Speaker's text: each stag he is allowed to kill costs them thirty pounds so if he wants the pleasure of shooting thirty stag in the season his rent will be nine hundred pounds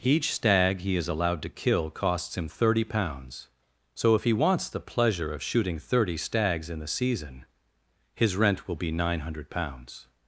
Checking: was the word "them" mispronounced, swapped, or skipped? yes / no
yes